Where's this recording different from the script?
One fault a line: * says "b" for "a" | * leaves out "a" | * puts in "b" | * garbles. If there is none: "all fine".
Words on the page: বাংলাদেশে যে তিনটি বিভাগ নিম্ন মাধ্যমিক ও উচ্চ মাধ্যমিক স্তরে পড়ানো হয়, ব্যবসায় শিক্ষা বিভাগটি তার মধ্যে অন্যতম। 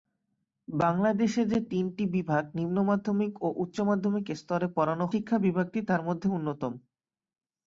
* leaves out "হয় ব্যবসায়"